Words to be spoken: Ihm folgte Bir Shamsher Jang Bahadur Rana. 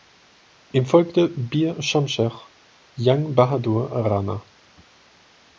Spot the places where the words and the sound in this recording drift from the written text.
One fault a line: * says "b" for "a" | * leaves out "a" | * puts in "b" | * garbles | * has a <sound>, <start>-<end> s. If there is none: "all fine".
all fine